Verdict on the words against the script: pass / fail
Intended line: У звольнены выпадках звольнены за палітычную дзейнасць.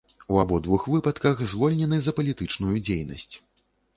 fail